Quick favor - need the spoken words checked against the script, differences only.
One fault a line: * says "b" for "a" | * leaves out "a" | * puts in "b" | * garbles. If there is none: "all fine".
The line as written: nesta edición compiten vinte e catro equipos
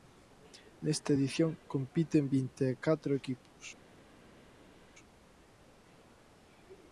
all fine